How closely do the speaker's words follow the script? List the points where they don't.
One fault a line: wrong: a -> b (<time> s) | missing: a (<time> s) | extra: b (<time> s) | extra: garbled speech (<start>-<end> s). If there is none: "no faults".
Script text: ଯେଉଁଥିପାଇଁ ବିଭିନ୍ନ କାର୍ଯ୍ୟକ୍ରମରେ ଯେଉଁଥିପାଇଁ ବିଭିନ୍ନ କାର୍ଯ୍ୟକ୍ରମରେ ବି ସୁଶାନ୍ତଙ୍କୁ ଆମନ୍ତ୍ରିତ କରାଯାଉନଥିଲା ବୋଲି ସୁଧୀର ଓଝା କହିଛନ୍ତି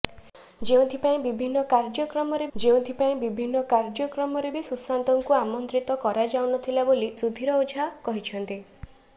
no faults